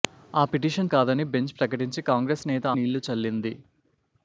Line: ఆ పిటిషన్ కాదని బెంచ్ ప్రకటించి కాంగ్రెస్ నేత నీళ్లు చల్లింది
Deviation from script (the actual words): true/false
false